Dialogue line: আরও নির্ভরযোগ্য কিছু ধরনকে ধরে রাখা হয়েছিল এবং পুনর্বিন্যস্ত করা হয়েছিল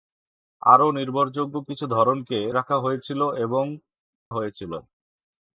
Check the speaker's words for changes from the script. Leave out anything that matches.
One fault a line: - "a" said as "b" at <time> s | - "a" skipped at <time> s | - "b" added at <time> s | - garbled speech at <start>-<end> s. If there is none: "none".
- "ধরে" skipped at 2.4 s
- "পুনর্বিন্যস্ত করা" skipped at 3.6 s